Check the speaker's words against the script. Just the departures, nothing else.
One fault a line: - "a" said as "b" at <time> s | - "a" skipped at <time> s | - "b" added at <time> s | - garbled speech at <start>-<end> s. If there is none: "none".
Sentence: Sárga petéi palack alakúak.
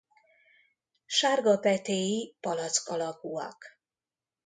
none